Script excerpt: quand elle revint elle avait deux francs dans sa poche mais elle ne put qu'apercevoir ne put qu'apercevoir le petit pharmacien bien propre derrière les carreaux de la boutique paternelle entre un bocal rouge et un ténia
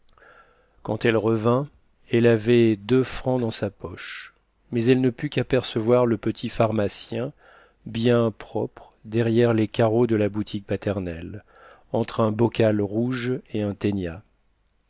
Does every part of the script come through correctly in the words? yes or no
no